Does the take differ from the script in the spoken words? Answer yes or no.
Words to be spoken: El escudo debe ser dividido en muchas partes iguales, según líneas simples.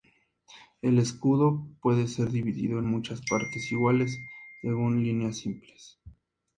yes